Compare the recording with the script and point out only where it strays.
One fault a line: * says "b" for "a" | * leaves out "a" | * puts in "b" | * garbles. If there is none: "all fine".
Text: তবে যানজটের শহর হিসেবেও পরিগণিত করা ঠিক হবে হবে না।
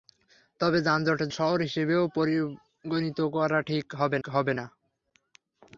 all fine